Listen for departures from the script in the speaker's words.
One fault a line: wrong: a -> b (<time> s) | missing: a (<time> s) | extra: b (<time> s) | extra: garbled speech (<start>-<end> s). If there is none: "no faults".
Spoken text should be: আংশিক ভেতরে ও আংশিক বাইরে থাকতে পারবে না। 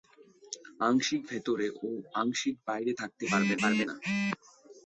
extra: পারবে (3.6 s)